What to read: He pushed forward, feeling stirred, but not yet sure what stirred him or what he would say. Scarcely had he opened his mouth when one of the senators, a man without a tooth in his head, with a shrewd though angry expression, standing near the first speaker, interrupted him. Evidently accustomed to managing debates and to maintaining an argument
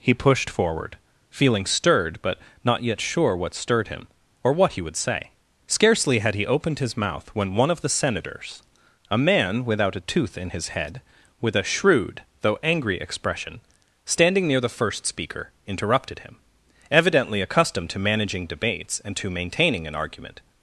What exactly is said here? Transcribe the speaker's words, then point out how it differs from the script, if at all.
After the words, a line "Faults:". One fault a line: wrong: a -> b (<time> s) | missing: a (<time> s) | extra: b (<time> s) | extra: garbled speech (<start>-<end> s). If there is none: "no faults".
He pushed forward, feeling stirred, but not yet sure what stirred him or what he would say. Scarcely had he opened his mouth when one of the senators, a man without a tooth in his head, with a shrewd though angry expression, standing near the first speaker, interrupted him. Evidently accustomed to managing debates and to maintaining an argument
Faults:
no faults